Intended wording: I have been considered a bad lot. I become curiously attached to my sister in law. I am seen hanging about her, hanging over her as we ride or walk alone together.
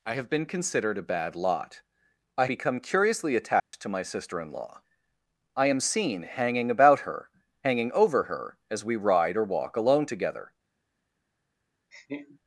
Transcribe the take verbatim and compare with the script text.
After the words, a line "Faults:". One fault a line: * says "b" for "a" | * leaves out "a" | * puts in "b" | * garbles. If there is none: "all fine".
I have been considered a bad lot. I become curiously attached to my sister in law. I am seen hanging about her, hanging over her as we ride or walk alone together.
Faults:
all fine